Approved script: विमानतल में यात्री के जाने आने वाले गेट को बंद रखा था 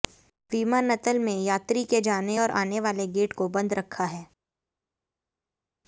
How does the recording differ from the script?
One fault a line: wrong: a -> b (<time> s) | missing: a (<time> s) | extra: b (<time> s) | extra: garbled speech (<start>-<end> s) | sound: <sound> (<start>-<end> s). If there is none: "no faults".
extra: और (2.4 s)
wrong: था -> है (4.1 s)